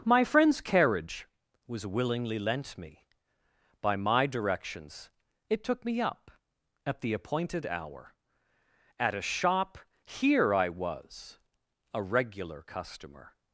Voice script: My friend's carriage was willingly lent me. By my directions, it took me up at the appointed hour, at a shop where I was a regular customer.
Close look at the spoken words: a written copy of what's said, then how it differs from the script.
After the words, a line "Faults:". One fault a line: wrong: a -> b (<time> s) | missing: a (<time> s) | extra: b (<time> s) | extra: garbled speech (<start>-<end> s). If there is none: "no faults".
My friend's carriage was willingly lent me. By my directions, it took me up at the appointed hour, at a shop here I was a regular customer.
Faults:
wrong: where -> here (10.0 s)